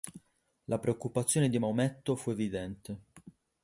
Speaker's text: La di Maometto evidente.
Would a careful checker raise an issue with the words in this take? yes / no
yes